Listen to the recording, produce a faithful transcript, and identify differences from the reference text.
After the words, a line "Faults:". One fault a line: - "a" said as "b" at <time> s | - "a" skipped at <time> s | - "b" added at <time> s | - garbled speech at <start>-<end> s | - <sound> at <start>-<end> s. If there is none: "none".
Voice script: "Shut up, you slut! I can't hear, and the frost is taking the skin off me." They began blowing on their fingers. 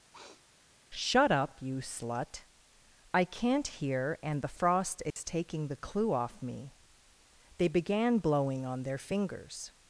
"Shut up, you slut! I can't hear, and the frost is taking the clue off me." They began blowing on their fingers.
Faults:
- sniff at 0.1-0.4 s
- dropout at 5.1-5.2 s
- "skin" said as "clue" at 5.8 s